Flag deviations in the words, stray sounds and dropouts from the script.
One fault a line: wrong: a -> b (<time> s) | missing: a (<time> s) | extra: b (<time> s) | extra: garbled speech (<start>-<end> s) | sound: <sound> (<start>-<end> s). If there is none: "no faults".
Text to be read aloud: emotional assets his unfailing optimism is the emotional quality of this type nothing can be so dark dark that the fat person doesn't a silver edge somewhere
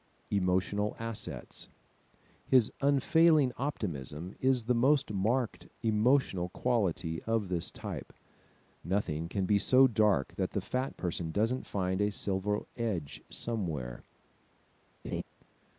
extra: most marked (4.7 s)
missing: dark (10.3 s)
extra: find (11.7 s)
sound: laugh (15.0-15.2 s)